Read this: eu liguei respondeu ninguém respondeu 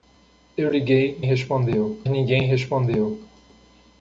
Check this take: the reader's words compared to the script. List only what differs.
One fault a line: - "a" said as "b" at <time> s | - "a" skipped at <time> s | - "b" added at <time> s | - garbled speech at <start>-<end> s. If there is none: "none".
none